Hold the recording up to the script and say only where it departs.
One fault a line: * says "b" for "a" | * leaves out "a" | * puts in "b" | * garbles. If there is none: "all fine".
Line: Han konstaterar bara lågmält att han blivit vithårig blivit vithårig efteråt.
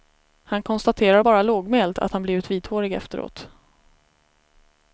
* leaves out "blivit vithårig"